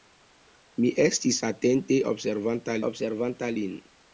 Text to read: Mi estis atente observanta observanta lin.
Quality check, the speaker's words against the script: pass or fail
pass